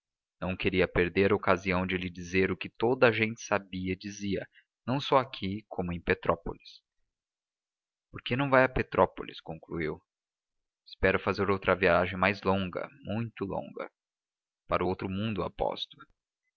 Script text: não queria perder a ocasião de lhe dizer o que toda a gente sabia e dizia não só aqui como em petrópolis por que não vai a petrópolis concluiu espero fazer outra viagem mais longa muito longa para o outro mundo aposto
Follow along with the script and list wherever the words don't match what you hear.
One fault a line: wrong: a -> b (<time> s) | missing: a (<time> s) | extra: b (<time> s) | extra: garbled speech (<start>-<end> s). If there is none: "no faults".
no faults